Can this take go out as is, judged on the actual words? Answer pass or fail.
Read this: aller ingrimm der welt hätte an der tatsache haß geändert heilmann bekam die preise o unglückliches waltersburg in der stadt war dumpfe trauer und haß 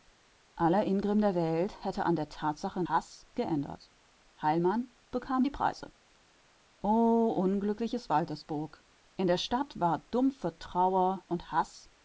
pass